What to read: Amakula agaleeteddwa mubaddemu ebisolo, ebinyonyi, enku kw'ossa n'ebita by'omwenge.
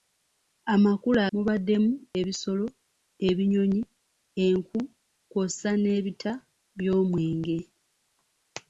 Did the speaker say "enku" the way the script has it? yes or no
yes